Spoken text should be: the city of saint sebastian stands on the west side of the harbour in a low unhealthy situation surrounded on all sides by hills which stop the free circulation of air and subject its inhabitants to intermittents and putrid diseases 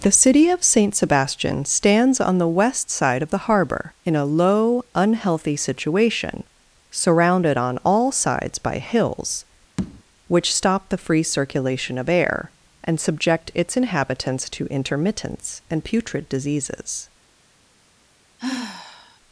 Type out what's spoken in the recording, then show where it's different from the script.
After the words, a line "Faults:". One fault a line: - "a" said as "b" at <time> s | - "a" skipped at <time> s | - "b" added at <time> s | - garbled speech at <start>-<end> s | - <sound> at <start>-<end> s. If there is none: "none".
the city of saint sebastian stands on the west side of the harbour in a low unhealthy situation surrounded on all sides by hills which stop the free circulation of air and subject its inhabitants to intermittents and putrid diseases
Faults:
- tap at 9.8-10.0 s
- sigh at 18.4-19.2 s